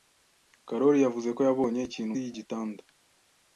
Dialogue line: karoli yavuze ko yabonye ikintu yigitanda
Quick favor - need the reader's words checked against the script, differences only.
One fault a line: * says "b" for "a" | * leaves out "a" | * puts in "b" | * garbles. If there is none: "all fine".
all fine